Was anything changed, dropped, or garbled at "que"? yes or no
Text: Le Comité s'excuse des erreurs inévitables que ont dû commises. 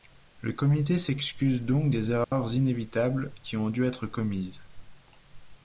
yes